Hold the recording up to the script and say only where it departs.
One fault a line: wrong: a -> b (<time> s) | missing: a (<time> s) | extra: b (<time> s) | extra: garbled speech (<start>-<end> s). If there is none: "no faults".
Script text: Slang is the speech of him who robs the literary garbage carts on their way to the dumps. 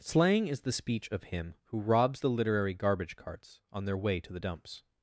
no faults